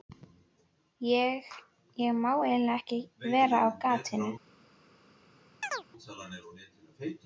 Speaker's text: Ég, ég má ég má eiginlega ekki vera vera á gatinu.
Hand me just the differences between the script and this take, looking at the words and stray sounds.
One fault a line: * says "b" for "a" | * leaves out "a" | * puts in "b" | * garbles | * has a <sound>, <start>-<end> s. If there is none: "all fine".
* leaves out "ég má"
* leaves out "vera"
* has a chirp, 5.6-5.9 s